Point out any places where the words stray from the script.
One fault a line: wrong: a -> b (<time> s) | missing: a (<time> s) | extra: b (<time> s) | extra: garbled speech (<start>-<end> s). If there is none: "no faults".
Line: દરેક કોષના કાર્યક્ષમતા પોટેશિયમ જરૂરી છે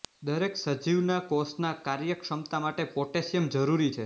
extra: સજીવના (0.6 s)
extra: માટે (2.6 s)